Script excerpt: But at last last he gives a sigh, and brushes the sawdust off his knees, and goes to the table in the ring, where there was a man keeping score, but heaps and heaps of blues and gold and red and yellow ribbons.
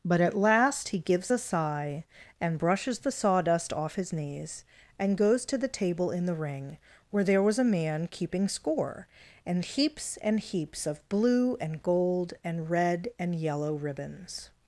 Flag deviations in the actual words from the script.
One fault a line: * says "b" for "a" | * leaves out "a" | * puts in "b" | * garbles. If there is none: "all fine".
* leaves out "last"
* says "and" for "but"
* says "blue" for "blues"